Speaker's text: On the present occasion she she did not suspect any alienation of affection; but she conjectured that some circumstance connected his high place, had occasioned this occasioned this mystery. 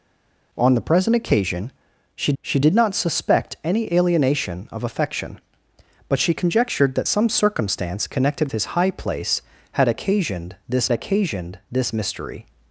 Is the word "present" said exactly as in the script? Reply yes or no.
yes